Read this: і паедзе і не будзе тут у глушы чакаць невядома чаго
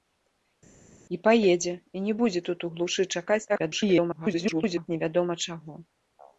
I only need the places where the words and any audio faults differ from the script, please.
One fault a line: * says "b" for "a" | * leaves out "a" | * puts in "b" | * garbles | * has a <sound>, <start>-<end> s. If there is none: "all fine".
* garbles